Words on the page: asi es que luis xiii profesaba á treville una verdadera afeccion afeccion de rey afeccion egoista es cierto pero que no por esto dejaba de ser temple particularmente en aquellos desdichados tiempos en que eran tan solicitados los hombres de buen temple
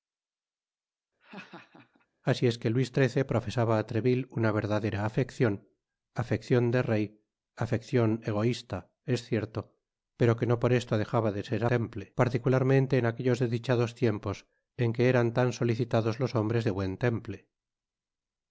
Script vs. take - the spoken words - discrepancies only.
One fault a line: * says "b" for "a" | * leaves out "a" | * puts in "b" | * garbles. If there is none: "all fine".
all fine